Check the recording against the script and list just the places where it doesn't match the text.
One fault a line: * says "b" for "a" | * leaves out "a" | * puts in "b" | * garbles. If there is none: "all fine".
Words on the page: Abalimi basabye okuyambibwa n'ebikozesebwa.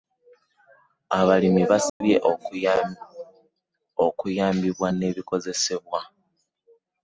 all fine